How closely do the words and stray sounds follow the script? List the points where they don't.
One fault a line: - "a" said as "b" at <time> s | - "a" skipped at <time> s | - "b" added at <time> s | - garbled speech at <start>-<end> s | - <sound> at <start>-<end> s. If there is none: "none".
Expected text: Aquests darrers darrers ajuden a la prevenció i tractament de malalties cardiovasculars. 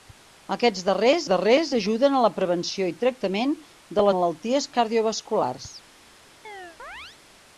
- chirp at 6.4-7.2 s